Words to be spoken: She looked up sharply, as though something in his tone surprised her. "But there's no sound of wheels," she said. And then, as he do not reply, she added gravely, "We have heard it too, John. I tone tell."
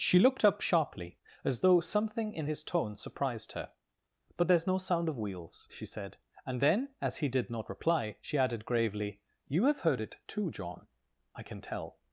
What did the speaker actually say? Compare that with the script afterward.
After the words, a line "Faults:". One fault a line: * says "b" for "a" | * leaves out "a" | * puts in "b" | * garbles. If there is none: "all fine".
She looked up sharply, as though something in his tone surprised her. "But there's no sound of wheels," she said. And then, as he did not reply, she added gravely, "You have heard it too, John. I can tell."
Faults:
* says "did" for "do"
* says "You" for "We"
* says "can" for "tone"